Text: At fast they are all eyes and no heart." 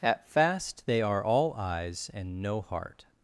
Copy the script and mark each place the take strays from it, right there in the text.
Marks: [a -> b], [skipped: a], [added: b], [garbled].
At fast they are all eyes and no heart."